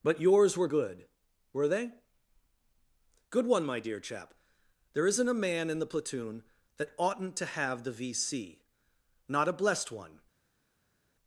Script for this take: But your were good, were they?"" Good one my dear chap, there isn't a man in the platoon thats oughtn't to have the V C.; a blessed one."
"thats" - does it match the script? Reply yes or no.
no